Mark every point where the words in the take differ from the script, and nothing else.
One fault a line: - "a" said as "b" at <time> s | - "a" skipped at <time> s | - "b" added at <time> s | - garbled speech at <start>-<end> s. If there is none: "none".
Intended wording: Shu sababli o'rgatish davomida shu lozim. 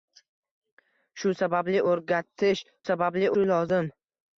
- "davomida" said as "sababli" at 2.9 s